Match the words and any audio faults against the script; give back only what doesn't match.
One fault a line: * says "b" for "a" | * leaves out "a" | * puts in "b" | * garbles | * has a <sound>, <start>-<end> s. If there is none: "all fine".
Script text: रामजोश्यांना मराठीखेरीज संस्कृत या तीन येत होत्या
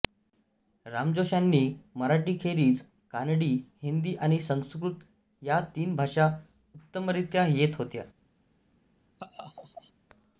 * puts in "कानडी हिंदी आणि"
* puts in "भाषा उत्तमरीत्या"
* has a laugh, 9.2-9.9 s